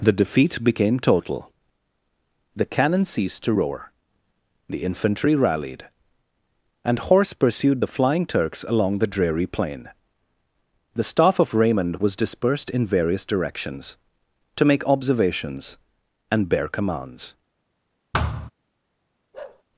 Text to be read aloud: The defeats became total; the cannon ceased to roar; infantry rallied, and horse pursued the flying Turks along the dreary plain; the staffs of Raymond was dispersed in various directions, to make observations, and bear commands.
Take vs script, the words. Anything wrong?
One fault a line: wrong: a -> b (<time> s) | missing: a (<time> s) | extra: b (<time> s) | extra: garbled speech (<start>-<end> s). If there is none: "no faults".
wrong: defeats -> defeat (0.2 s)
extra: the (4.7 s)
wrong: staffs -> staff (11.1 s)